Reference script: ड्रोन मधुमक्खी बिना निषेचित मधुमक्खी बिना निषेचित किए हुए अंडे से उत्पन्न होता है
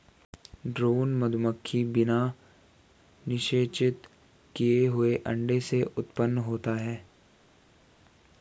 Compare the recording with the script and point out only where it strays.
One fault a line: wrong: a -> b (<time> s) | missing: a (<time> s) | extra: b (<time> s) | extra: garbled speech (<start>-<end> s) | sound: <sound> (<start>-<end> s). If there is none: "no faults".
missing: मधुमक्खी बिना निषेचित (4.1 s)